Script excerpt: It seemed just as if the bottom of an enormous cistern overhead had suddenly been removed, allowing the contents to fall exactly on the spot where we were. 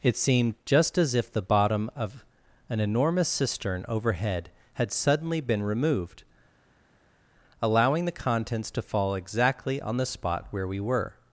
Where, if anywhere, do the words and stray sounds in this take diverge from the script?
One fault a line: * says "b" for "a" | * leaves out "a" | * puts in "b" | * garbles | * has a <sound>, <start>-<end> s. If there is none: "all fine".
all fine